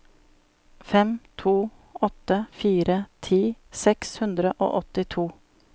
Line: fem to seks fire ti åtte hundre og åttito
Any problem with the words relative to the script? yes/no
yes